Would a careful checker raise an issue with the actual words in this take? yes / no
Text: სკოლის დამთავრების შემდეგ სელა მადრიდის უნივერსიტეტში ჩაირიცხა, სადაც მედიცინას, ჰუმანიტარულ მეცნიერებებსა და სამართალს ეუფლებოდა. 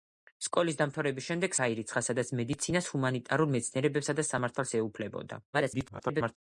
yes